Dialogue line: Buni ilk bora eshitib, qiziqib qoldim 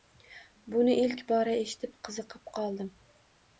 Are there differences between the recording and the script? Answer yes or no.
no